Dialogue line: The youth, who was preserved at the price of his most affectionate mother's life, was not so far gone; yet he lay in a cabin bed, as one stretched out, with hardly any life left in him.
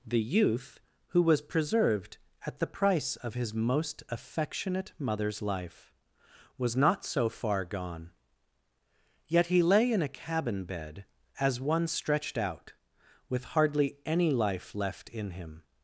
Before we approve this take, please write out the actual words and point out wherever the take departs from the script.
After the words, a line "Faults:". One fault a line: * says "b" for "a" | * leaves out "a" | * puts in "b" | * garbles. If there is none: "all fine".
The youth, who was preserved at the price of his most affectionate mother's life, was not so far gone; yet he lay in a cabin bed, as one stretched out, with hardly any life left in him.
Faults:
all fine